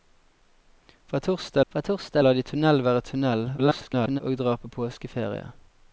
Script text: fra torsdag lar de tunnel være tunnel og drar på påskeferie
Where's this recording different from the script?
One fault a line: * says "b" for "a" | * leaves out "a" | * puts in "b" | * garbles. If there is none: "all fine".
* puts in "fra torsdag"
* garbles